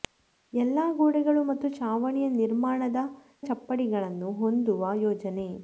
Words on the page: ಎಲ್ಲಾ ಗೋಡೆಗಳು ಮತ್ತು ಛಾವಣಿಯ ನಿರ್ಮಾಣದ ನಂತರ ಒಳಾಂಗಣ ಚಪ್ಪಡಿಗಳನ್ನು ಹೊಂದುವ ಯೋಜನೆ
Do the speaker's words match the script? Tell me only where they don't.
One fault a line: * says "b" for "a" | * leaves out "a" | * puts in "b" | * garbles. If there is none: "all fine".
* leaves out "ನಂತರ ಒಳಾಂಗಣ"